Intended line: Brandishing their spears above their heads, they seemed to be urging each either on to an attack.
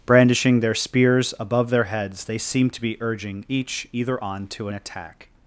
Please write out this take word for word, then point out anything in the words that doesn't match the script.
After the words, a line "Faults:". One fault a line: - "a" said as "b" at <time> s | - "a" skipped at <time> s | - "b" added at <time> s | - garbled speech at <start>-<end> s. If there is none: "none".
Brandishing their spears above their heads, they seemed to be urging each either on to an attack.
Faults:
none